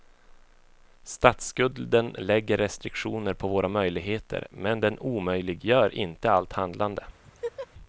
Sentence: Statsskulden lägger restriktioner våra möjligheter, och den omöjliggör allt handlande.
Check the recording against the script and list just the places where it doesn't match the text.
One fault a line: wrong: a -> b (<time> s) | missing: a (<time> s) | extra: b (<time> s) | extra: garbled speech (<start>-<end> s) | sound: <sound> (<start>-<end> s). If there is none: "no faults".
extra: på (3.3 s)
wrong: och -> men (4.5 s)
extra: inte (6.0 s)
sound: laugh (7.2-7.7 s)